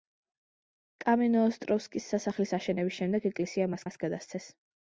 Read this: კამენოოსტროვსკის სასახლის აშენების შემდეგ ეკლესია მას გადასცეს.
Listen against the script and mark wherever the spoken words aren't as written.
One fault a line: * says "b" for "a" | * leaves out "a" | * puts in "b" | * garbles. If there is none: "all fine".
* puts in "მას"